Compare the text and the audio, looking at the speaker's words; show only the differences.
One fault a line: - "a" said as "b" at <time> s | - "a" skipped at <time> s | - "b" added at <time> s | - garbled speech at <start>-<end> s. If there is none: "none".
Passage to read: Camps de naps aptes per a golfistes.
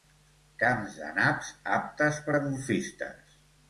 none